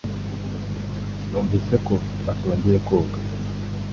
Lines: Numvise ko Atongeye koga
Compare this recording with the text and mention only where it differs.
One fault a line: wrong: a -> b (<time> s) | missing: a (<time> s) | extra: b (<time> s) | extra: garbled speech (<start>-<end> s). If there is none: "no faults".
no faults